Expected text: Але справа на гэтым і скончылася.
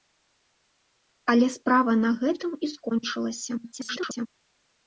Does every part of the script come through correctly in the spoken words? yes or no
no